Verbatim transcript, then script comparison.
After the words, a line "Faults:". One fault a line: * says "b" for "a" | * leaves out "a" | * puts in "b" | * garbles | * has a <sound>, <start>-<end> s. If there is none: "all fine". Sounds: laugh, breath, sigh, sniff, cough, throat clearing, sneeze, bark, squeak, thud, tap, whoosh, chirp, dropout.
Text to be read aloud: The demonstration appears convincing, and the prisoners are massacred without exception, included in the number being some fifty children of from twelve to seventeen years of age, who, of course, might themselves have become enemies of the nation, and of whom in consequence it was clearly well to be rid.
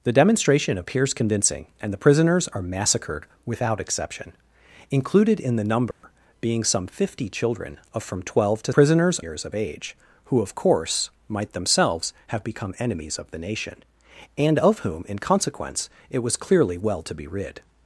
The demonstration appears convincing, and the prisoners are massacred without exception, included in the number being some fifty children of from twelve to prisoners years of age, who, of course, might themselves have become enemies of the nation, and of whom in consequence it was clearly well to be rid.
Faults:
* has a dropout, 5.9-6.0 s
* says "prisoners" for "seventeen"